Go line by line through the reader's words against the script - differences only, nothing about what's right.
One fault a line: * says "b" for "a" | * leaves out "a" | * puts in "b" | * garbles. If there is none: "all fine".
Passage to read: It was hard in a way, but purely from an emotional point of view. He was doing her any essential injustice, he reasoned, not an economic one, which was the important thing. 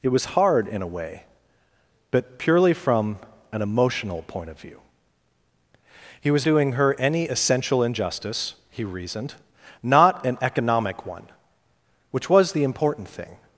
all fine